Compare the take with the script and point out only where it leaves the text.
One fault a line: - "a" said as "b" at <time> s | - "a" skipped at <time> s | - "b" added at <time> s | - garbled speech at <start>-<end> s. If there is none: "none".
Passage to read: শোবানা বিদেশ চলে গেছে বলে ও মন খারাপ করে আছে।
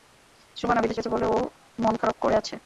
- "চলে" skipped at 1.0 s